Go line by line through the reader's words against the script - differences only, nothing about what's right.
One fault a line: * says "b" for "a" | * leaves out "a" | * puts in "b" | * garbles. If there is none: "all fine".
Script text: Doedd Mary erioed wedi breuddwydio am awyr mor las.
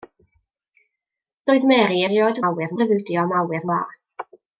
* says "awyr" for "wedi"
* leaves out "mor"